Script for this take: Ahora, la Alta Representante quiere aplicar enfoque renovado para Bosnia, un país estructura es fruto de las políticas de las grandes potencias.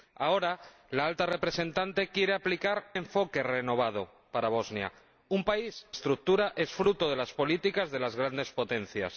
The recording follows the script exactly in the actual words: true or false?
true